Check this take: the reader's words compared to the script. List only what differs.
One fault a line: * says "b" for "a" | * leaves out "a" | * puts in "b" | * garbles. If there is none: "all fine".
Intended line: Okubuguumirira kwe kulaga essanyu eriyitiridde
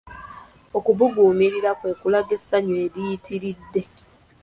all fine